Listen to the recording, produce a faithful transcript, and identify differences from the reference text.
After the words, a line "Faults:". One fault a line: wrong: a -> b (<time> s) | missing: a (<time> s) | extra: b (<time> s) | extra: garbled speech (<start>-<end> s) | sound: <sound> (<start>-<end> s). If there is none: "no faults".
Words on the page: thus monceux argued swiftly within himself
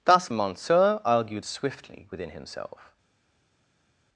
thus monceux argued swiftly within himself
Faults:
no faults